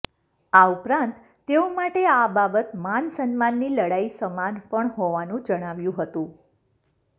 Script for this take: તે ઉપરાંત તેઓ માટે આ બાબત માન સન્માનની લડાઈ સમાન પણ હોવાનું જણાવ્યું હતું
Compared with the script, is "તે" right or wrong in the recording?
wrong